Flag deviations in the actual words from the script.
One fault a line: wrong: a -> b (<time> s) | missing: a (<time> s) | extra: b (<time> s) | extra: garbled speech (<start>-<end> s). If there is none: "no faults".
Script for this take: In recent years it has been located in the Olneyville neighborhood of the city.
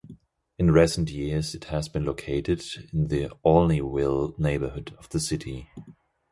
no faults